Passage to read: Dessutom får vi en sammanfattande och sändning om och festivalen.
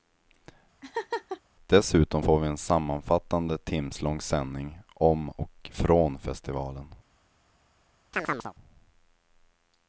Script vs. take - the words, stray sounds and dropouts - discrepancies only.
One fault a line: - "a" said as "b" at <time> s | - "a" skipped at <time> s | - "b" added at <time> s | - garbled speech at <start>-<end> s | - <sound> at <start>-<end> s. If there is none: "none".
- laugh at 0.8-1.4 s
- "och" said as "timslång" at 3.6 s
- "från" added at 5.7 s
- chirp at 8.1-8.5 s